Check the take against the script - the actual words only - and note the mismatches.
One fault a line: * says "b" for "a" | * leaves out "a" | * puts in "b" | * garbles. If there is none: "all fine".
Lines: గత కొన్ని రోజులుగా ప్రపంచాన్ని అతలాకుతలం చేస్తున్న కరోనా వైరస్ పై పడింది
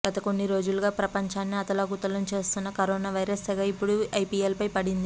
* puts in "సెగ ఇప్పుడు ఐపీఎల్"